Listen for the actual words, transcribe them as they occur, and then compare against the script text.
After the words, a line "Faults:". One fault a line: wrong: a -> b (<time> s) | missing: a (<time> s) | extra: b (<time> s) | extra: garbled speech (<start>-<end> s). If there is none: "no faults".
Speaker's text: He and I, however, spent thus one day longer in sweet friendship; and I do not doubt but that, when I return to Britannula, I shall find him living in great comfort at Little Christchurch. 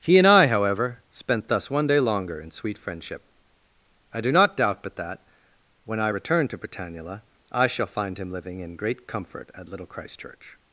He and I, however, spent thus one day longer in sweet friendship; I do not doubt but that, when I return to Britannula, I shall find him living in great comfort at Little Christchurch.
Faults:
missing: and (3.2 s)